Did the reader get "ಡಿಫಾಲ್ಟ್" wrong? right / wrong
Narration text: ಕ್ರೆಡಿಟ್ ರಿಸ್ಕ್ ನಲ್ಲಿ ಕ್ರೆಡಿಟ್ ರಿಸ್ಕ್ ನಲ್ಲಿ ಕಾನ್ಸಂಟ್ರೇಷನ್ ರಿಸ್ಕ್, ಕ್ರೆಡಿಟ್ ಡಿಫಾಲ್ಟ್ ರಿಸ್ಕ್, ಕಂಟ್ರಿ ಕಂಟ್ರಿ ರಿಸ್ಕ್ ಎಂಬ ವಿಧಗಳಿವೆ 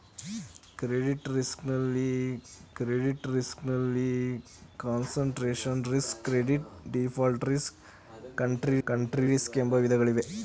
right